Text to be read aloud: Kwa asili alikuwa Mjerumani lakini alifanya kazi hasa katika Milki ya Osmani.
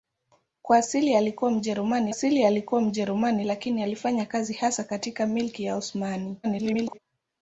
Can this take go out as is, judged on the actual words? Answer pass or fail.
fail